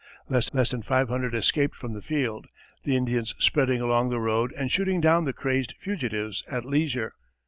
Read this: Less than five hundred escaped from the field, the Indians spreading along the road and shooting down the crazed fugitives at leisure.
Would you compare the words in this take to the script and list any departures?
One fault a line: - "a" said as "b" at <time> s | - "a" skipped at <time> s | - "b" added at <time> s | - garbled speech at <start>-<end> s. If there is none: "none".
- "less" added at 0.5 s